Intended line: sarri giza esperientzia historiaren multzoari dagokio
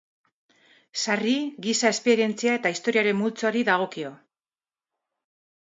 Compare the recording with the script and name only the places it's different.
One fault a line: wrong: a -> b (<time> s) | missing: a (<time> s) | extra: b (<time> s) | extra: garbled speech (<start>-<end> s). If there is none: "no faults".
extra: eta (2.6 s)